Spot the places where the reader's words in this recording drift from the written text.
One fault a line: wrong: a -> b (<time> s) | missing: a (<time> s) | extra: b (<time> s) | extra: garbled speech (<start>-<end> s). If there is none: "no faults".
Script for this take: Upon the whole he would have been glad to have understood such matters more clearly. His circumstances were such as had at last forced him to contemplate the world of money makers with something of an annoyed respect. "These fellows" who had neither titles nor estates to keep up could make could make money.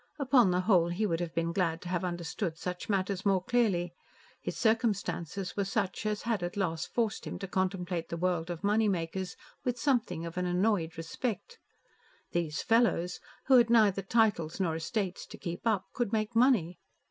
missing: could make (16.4 s)